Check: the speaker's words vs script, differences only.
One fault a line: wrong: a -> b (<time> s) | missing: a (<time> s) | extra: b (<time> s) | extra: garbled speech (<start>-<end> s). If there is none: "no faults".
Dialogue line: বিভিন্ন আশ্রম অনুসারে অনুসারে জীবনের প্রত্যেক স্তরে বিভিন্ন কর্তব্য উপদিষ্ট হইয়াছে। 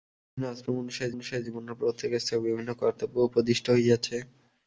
no faults